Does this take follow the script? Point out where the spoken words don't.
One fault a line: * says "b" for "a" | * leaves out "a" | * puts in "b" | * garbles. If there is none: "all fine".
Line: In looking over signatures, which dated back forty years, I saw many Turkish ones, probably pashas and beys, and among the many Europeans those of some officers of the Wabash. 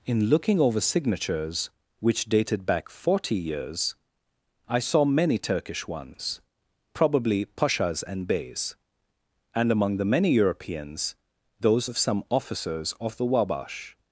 all fine